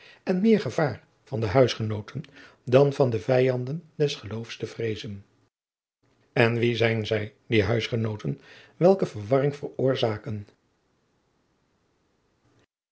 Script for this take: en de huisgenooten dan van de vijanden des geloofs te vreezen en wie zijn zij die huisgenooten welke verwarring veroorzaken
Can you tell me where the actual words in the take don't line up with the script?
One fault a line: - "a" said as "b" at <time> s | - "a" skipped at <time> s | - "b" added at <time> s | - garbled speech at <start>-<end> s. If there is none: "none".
- "meer gevaar van" added at 0.4 s